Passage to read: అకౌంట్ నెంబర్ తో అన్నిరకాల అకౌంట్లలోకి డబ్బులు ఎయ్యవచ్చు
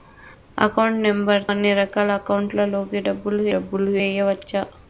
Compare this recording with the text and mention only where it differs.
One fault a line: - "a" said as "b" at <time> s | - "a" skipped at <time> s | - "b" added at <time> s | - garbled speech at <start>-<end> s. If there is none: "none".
- "తో" skipped at 1.4 s
- "డబ్బులు" added at 3.5 s